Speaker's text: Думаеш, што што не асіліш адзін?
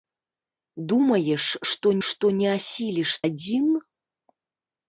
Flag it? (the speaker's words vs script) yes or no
no